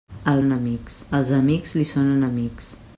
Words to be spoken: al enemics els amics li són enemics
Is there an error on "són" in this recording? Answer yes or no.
no